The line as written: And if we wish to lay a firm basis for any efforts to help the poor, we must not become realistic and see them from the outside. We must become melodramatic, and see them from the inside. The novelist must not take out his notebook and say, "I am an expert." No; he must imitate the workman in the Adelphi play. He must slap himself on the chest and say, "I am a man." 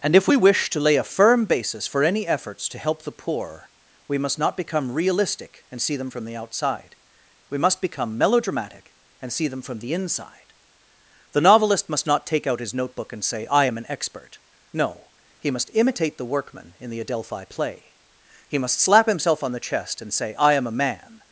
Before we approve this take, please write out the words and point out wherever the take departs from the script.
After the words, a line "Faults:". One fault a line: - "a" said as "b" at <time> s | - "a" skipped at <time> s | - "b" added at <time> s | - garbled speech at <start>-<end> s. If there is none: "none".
And if we wish to lay a firm basis for any efforts to help the poor, we must not become realistic and see them from the outside. We must become melodramatic, and see them from the inside. The novelist must not take out his notebook and say, "I am an expert." No; he must imitate the workman in the Adelphi play. He must slap himself on the chest and say, "I am a man."
Faults:
none